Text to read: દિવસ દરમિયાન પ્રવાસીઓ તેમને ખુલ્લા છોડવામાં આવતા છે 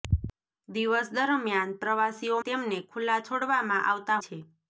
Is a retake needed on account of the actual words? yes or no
no